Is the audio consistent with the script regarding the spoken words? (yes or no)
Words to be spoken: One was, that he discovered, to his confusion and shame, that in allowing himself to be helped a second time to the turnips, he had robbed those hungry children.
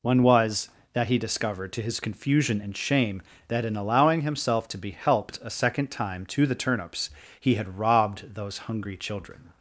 yes